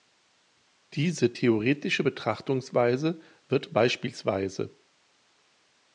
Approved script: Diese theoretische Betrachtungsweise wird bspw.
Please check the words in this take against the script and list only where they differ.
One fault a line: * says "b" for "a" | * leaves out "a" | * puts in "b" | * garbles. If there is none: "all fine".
all fine